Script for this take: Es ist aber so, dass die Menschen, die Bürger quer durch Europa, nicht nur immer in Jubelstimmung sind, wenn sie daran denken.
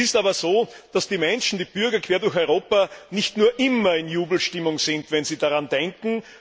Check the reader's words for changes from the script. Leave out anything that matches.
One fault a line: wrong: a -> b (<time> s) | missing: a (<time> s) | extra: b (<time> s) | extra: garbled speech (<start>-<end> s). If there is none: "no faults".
no faults